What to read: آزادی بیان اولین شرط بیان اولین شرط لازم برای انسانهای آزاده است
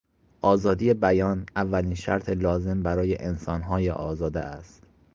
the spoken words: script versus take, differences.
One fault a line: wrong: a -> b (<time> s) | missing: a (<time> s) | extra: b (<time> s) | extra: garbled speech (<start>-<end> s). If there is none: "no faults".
missing: بیان اولین شرط (2.3 s)